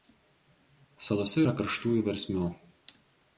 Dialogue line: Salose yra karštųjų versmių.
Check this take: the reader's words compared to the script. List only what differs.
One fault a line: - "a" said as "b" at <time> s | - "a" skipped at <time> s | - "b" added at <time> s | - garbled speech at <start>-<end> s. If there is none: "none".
none